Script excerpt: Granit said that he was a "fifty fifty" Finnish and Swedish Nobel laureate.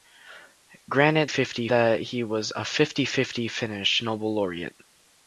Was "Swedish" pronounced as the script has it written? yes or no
no